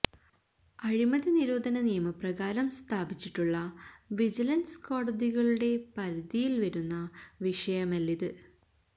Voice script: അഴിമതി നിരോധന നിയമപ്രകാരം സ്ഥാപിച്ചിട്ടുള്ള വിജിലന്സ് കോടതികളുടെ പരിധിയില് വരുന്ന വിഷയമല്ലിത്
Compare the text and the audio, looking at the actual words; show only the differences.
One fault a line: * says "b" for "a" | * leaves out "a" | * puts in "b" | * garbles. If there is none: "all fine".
all fine